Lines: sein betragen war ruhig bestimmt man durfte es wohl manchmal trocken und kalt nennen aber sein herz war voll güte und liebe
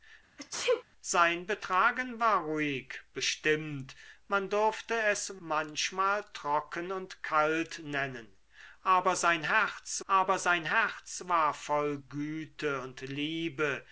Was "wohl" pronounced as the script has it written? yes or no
no